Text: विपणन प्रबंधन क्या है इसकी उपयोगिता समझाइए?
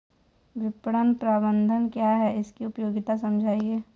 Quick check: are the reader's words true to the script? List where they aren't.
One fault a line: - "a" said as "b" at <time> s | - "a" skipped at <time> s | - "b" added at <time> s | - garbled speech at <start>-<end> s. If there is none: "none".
none